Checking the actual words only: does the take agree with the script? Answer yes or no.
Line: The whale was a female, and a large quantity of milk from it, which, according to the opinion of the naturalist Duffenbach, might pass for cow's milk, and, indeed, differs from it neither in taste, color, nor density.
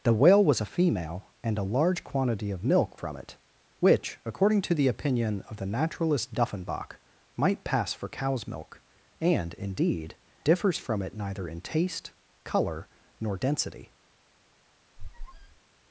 yes